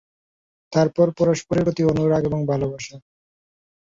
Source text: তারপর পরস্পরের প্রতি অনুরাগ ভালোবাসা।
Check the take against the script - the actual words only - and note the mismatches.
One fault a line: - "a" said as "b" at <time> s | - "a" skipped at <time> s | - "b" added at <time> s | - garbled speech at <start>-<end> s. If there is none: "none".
- "এবং" added at 2.2 s